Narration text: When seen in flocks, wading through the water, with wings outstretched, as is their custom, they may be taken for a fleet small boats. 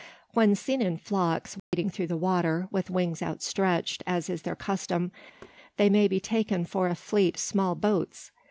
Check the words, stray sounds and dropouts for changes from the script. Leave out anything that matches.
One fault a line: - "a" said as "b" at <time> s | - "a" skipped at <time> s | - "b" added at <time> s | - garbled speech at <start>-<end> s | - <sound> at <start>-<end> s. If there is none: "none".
- dropout at 1.6-1.7 s
- thud at 5.4-5.6 s